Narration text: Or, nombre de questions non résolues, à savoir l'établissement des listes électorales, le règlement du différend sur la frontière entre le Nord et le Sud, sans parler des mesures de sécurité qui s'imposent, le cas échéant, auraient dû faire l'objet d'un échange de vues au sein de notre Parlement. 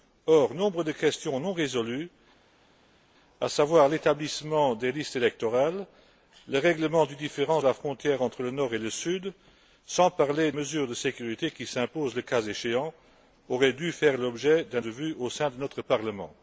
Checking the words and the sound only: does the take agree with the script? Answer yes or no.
no